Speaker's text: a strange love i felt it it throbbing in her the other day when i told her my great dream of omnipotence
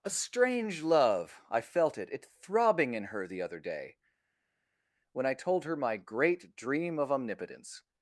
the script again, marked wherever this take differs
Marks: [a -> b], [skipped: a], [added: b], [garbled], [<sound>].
a strange love i felt it it throbbing in her the other day when i told her my great dream of omnipotence